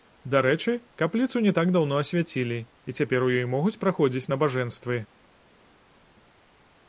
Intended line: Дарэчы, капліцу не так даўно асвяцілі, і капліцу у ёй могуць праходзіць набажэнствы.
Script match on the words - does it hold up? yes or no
no